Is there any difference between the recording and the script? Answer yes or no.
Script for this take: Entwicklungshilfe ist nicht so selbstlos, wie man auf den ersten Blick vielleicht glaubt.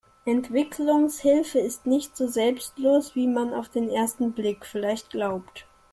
no